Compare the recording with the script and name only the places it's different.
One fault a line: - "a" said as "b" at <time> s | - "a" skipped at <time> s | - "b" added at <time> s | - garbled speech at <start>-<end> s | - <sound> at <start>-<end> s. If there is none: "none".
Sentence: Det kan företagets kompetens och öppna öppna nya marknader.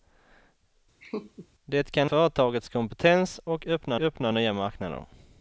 - laugh at 1.0-1.5 s